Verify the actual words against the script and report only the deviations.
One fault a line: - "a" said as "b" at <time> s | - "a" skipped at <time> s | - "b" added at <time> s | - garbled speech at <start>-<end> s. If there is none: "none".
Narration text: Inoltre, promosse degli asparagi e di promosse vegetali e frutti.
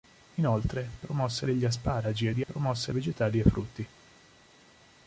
none